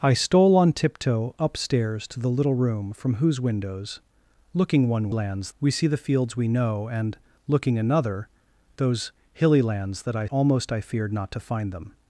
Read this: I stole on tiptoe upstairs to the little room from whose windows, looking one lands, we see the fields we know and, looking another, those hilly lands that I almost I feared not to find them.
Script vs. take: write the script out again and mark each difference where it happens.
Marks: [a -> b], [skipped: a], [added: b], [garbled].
I stole on tiptoe upstairs to the little room from whose windows, looking one lands, we see the fields we know and, looking another, those hilly lands that I almost I feared not to find them.